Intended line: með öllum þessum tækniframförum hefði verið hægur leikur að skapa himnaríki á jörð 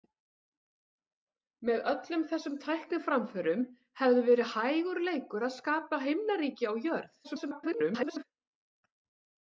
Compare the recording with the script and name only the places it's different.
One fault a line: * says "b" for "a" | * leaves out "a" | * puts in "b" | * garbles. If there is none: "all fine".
* garbles